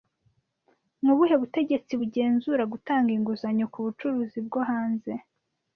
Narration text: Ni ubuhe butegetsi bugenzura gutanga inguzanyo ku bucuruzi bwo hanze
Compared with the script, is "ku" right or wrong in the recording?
right